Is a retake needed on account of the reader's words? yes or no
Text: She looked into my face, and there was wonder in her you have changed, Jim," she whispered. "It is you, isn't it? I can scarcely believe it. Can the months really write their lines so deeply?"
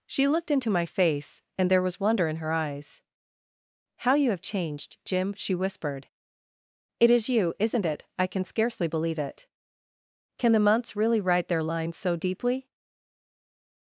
yes